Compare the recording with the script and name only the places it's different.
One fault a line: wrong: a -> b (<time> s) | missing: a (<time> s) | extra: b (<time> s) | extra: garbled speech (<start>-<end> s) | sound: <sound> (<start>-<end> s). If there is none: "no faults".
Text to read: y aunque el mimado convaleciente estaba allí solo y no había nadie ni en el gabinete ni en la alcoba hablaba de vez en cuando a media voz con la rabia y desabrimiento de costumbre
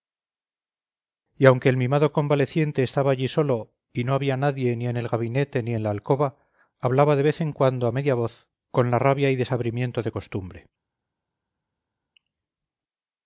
no faults